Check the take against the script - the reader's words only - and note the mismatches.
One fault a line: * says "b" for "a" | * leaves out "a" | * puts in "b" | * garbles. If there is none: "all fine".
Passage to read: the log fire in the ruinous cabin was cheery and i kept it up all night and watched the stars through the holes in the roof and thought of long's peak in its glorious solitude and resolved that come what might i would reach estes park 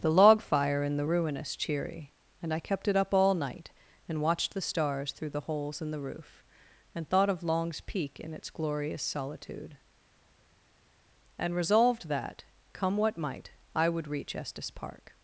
* leaves out "cabin was"